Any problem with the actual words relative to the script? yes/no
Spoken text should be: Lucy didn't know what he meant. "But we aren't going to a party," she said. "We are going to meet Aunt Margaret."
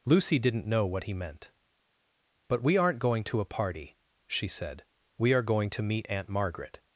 no